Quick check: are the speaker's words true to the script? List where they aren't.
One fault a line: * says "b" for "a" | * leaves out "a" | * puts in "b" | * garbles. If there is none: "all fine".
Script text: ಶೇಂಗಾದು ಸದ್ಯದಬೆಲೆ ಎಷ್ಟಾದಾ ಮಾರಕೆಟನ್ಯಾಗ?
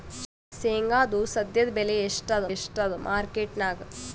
* puts in "ಎಷ್ಟಾದಾ"